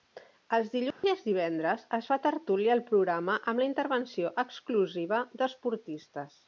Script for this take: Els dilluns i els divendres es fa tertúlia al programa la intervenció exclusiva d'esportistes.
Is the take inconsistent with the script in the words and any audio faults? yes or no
yes